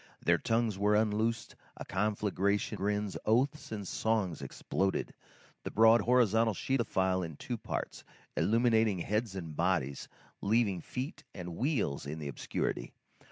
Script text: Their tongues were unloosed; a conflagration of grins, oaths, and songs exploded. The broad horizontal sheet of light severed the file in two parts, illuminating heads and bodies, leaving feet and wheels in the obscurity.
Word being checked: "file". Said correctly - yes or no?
yes